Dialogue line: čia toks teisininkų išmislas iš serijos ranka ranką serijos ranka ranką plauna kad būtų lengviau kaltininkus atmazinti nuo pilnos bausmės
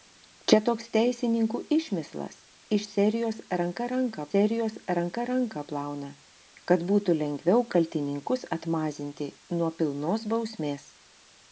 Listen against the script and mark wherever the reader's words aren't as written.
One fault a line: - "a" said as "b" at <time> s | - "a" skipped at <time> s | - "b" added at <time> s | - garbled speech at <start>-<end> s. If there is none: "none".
none